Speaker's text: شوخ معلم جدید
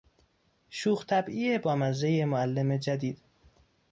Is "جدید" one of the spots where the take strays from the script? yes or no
no